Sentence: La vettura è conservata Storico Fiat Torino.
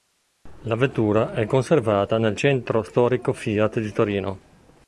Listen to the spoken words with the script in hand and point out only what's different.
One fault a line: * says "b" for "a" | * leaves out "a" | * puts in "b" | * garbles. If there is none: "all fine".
* puts in "nel Centro"
* puts in "di"